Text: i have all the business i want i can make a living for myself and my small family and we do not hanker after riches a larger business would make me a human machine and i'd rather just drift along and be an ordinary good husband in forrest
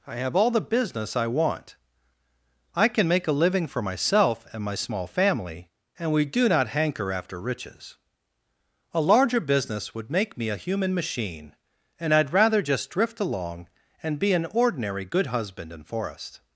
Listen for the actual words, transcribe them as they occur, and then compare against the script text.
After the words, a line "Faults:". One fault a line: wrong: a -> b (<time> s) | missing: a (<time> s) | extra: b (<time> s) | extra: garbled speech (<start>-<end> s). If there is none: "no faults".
i have all the business i want i can make a living for myself and my small family and we do not hanker after riches a larger business would make me a human machine and i'd rather just drift along and be an ordinary good husband in forrest
Faults:
no faults